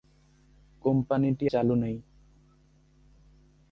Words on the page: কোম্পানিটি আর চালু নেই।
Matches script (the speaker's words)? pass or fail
fail